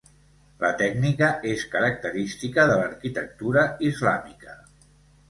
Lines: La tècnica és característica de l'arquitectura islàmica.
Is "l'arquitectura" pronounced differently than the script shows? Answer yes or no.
no